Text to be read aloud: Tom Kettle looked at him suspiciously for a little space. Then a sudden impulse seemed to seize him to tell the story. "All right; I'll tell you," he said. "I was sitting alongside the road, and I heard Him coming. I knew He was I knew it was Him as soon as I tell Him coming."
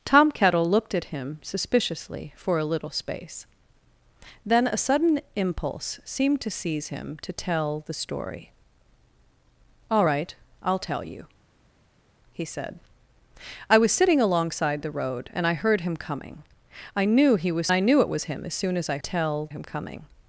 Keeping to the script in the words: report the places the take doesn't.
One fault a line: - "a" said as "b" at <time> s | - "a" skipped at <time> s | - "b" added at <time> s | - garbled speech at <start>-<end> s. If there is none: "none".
none